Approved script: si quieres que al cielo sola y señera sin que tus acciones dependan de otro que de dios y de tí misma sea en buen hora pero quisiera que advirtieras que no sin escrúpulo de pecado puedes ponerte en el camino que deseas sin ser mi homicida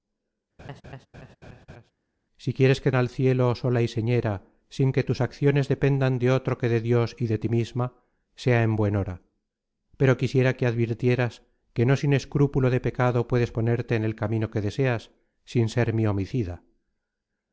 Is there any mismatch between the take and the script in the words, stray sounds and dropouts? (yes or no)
yes